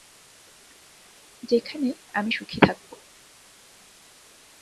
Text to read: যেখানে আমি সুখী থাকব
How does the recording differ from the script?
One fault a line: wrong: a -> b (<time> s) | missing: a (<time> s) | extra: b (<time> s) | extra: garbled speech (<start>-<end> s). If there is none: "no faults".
no faults